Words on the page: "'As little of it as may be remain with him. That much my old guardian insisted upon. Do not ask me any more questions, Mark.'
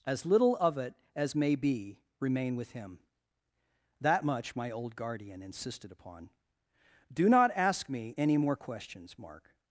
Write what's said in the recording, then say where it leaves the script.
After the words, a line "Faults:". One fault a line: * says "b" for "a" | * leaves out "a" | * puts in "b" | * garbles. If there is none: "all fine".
"'As little of it as may be remain with him. That much my old guardian insisted upon. Do not ask me any more questions, Mark.'
Faults:
all fine